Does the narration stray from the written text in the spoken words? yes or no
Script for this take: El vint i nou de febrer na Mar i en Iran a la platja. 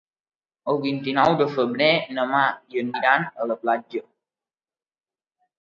no